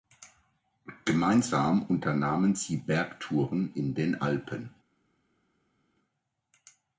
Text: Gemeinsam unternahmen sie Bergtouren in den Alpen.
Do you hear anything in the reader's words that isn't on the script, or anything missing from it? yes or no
no